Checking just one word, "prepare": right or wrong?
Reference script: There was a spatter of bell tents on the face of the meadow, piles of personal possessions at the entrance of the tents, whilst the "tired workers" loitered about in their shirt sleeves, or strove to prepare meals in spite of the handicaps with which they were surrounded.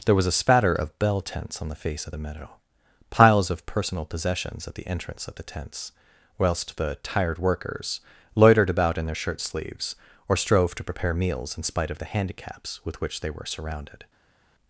right